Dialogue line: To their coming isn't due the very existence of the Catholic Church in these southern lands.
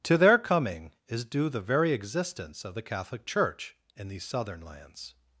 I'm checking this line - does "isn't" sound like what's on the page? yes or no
no